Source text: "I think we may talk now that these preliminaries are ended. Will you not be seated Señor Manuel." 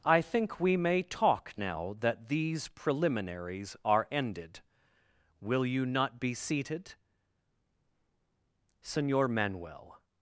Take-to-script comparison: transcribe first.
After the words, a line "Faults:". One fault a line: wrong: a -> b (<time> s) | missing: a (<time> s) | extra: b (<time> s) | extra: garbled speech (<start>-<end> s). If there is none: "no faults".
"I think we may talk now that these preliminaries are ended. Will you not be seated Señor Manuel."
Faults:
no faults